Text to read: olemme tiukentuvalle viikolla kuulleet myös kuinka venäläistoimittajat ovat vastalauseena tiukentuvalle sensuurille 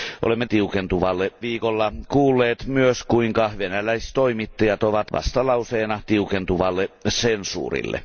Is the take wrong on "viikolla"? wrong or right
right